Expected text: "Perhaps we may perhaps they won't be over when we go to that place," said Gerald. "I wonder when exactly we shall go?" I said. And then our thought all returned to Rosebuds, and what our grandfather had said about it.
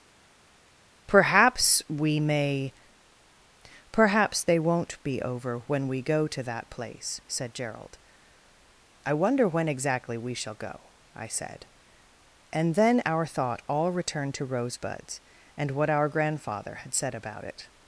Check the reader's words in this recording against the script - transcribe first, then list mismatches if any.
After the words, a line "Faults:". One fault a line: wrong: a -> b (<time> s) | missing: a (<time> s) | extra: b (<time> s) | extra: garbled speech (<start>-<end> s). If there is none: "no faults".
"Perhaps we may perhaps they won't be over when we go to that place," said Gerald. "I wonder when exactly we shall go?" I said. And then our thought all returned to Rosebuds, and what our grandfather had said about it.
Faults:
no faults